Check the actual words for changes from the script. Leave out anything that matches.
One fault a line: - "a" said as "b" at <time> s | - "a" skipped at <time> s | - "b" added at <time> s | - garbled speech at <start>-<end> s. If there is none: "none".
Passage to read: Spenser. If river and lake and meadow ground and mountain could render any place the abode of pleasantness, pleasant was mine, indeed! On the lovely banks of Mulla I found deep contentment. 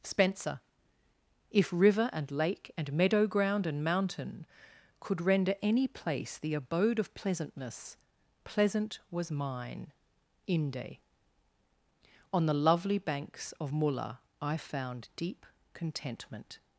- "indeed" said as "inde" at 10.5 s